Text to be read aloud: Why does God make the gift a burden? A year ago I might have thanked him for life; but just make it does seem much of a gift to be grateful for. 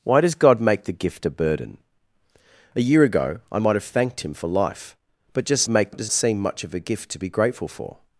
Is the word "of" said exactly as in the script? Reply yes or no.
yes